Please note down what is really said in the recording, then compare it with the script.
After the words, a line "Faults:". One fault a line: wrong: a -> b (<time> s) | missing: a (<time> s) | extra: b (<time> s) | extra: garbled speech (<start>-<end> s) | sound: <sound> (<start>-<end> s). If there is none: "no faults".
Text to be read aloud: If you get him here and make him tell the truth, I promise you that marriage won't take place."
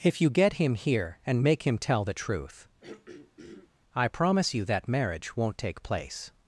If you get him here and make him tell the truth, I promise you that marriage won't take place."
Faults:
sound: throat clearing (2.8-3.7 s)